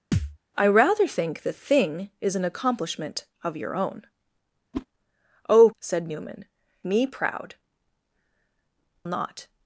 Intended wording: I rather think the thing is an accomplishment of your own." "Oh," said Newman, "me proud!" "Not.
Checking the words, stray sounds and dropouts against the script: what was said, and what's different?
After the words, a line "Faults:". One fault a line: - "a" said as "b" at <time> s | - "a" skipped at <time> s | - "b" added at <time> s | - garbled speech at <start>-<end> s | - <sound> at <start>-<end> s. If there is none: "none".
I rather think the thing is an accomplishment of your own." "Oh," said Newman, "me proud!" "Not.
Faults:
- thud at 0.1-0.4 s
- whoosh at 4.7-4.9 s